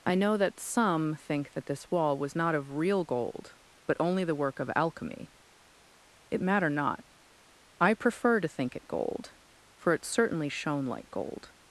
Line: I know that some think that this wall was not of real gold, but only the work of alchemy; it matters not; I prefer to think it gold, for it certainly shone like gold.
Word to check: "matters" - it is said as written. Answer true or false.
false